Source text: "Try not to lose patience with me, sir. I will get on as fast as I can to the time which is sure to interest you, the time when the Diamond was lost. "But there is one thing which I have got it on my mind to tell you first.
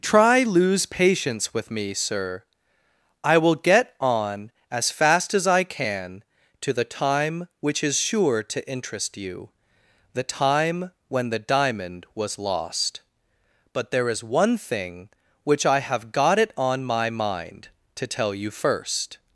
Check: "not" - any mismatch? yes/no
yes